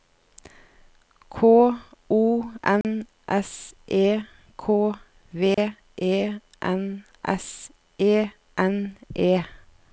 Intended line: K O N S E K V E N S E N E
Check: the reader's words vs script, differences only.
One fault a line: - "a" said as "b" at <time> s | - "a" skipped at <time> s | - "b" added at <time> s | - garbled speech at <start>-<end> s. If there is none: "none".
none